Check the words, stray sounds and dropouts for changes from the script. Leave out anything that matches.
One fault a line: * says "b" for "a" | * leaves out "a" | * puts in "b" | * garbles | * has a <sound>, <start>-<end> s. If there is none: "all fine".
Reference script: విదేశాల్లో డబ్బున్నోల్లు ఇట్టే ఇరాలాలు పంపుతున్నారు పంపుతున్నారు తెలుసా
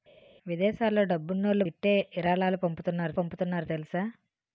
all fine